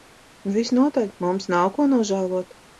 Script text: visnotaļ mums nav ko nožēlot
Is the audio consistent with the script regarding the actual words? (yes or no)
yes